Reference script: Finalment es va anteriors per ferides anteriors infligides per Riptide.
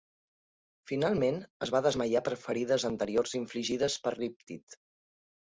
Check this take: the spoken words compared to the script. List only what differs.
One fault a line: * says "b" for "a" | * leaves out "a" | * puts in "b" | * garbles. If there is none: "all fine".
* says "desmaiar" for "anteriors"